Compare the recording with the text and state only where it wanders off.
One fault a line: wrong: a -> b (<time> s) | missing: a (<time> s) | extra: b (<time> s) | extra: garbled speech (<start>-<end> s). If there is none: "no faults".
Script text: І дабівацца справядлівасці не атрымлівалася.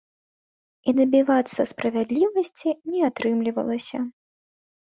no faults